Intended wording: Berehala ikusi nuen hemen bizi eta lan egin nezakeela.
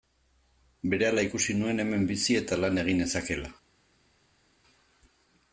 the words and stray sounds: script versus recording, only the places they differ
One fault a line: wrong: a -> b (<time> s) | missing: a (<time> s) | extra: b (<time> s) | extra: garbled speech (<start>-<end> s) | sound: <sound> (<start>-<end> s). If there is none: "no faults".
no faults